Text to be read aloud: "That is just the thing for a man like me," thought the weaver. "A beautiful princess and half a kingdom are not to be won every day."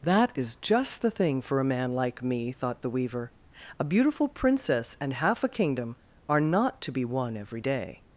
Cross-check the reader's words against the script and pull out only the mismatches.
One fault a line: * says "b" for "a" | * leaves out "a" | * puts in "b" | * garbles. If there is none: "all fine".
all fine